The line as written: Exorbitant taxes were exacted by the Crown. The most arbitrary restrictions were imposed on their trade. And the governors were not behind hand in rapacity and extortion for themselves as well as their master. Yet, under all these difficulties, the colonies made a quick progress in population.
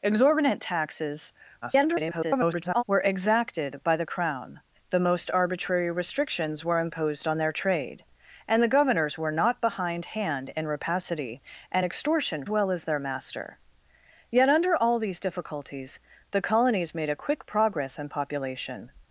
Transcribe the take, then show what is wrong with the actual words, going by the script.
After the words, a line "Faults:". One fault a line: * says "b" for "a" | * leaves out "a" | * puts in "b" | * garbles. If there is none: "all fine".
Exorbitant taxes [garbled] were exacted by the Crown. The most arbitrary restrictions were imposed on their trade. And the governors were not behind hand in rapacity and extortion well as their master. Yet, under all these difficulties, the colonies made a quick progress in population.
Faults:
* garbles
* leaves out "for themselves as"